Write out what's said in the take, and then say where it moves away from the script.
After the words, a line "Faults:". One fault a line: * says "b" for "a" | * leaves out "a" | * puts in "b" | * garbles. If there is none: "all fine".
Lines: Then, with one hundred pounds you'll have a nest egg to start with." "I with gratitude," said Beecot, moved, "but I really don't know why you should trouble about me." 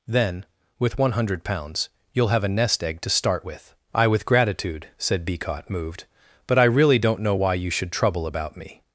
Then, with one hundred pounds you'll have a nest egg to start with." "I with gratitude," said Beecot, moved, "but I really don't know why you should trouble about me."
Faults:
all fine